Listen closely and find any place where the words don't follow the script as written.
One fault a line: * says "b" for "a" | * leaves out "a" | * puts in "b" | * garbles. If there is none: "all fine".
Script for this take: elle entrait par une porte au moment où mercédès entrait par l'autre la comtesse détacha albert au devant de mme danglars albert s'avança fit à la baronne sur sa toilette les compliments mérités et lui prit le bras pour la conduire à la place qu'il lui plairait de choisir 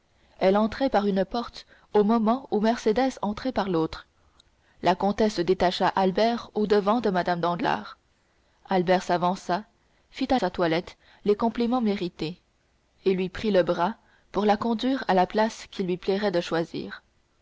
* leaves out "la baronne sur"